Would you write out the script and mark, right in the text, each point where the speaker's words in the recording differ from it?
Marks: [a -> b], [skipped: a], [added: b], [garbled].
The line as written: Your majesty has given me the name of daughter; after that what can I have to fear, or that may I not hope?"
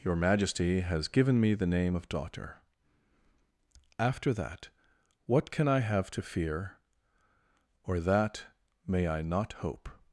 Your majesty has given me the name of daughter; after that what can I have to fear, or that may I not hope?"